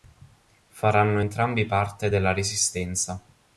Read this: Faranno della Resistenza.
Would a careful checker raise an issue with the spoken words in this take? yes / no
yes